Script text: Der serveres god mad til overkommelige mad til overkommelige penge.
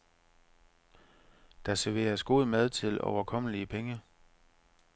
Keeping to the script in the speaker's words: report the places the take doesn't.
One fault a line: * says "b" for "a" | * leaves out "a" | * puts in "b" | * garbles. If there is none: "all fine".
* leaves out "mad til overkommelige"